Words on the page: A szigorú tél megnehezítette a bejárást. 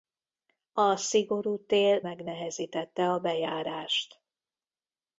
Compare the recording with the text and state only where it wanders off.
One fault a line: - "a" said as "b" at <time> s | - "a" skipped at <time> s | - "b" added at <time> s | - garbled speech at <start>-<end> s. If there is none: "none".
none